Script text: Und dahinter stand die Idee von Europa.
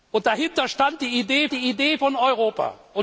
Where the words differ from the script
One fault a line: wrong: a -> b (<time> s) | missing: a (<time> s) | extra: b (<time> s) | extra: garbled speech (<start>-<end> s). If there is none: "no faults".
extra: die Idee (1.5 s)